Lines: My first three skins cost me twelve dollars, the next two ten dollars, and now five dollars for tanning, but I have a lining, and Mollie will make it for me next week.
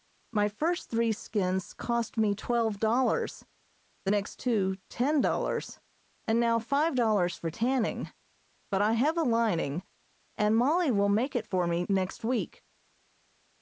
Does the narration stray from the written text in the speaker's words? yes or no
no